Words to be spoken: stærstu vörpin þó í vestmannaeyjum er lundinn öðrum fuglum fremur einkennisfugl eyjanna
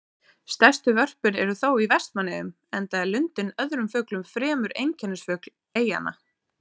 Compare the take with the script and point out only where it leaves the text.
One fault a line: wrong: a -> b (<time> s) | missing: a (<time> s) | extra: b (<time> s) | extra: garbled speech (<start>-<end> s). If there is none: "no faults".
extra: eru (1.4 s)
extra: enda (2.8 s)